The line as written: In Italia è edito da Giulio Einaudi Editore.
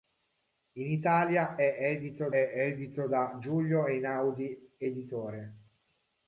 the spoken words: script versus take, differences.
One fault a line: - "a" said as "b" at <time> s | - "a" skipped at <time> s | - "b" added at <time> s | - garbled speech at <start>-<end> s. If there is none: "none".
- "è edito" added at 2.3 s